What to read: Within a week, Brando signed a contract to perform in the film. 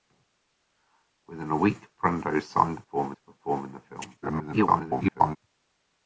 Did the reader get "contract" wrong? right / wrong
wrong